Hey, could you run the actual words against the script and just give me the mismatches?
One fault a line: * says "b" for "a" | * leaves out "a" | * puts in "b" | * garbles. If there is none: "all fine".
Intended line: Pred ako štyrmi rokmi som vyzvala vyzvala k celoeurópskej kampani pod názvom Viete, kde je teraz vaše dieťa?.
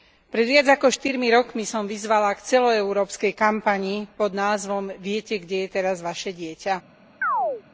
* puts in "viac"
* leaves out "vyzvala"